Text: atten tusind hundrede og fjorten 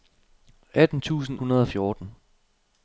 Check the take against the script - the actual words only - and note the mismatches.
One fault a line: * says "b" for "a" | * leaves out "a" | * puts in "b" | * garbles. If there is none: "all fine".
all fine